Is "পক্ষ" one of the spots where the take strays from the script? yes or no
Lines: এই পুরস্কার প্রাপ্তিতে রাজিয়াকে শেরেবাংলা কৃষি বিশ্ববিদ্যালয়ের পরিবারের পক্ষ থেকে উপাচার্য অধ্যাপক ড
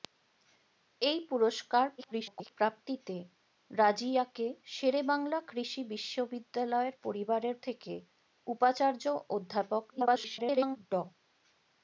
yes